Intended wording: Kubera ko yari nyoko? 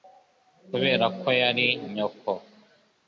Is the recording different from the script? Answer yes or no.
no